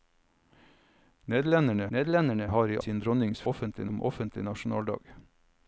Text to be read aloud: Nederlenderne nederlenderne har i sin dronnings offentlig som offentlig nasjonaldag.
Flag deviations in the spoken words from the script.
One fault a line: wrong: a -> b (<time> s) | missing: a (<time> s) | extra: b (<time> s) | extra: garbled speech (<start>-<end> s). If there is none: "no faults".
no faults